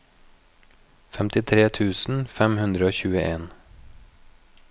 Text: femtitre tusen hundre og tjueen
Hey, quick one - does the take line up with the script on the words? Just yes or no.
no